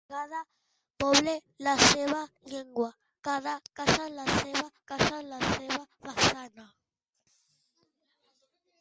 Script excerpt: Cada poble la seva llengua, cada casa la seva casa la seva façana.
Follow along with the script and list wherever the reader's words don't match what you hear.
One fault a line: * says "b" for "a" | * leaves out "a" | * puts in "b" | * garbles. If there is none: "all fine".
all fine